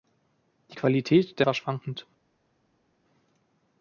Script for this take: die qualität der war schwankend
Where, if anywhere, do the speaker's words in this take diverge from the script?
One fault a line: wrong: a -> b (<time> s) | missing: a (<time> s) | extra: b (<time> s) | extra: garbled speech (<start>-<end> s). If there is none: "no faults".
no faults